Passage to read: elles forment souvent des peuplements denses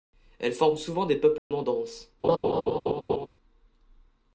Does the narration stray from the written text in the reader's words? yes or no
no